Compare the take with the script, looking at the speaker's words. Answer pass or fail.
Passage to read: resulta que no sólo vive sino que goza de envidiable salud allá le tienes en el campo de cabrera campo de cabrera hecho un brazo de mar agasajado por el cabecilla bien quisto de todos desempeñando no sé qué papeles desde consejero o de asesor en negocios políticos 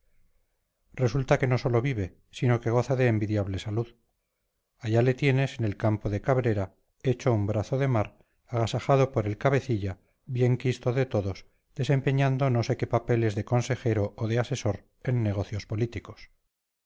fail